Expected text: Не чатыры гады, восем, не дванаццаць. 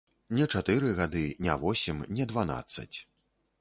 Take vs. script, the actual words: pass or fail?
fail